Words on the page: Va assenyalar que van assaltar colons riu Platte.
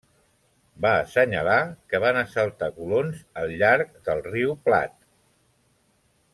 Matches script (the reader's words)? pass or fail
fail